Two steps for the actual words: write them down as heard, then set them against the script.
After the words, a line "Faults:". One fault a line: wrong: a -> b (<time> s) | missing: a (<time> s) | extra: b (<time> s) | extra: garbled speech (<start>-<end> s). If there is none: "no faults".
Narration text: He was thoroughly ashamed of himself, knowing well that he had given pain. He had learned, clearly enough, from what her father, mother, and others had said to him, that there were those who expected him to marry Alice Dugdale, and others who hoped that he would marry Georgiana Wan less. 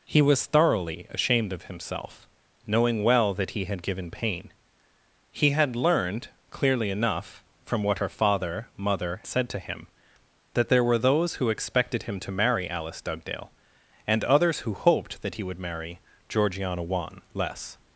He was thoroughly ashamed of himself, knowing well that he had given pain. He had learned, clearly enough, from what her father, mother, said to him, that there were those who expected him to marry Alice Dugdale, and others who hoped that he would marry Georgiana Wan less.
Faults:
missing: and others had (9.2 s)